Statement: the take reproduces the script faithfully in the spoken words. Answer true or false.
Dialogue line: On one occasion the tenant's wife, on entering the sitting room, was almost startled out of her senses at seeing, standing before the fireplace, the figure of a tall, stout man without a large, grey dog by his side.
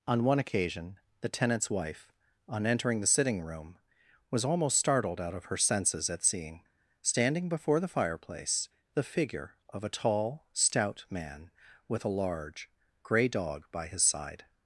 false